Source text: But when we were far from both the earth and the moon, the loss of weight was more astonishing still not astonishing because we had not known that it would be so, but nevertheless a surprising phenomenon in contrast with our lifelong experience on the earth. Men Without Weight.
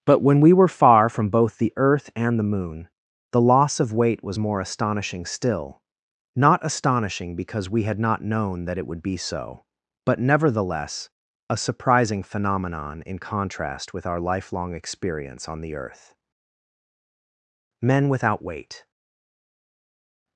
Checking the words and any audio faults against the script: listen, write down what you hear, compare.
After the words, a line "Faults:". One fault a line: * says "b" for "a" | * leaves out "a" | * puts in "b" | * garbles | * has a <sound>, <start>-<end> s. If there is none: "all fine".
But when we were far from both the earth and the moon, the loss of weight was more astonishing still not astonishing because we had not known that it would be so, but nevertheless a surprising phenomenon in contrast with our lifelong experience on the earth. Men Without Weight.
Faults:
all fine